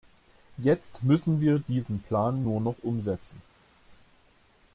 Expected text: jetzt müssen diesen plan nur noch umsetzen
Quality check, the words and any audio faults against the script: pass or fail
fail